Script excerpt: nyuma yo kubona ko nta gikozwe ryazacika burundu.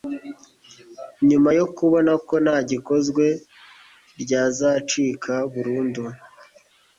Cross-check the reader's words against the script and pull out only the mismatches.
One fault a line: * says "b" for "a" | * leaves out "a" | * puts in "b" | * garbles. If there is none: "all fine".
all fine